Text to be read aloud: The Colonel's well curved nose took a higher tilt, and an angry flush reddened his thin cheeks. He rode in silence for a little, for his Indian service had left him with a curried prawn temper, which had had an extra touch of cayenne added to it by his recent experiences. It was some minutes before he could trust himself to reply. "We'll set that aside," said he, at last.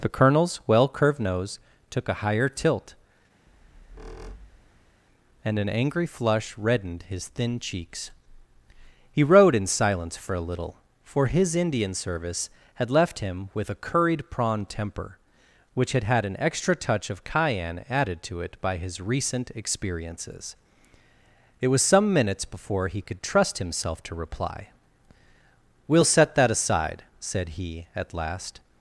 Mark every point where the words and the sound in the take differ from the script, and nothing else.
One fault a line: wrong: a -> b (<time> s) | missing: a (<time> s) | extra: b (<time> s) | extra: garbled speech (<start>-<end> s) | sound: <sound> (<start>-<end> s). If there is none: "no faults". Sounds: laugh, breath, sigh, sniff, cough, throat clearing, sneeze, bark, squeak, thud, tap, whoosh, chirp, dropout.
sound: squeak (3.5-5.0 s)